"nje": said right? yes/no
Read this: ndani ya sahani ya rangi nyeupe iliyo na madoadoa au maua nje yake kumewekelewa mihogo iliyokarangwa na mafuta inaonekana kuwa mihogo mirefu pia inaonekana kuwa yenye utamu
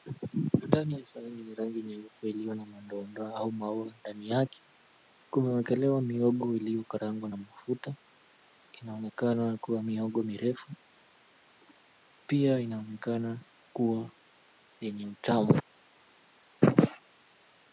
no